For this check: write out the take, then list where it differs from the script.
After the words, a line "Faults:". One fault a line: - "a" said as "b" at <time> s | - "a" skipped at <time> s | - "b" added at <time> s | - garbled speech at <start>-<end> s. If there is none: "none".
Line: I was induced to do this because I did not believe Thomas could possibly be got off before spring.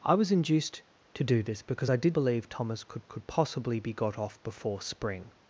I was induced to do this because I did believe Thomas could could possibly be got off before spring.
Faults:
- "not" skipped at 2.2 s
- "could" added at 3.0 s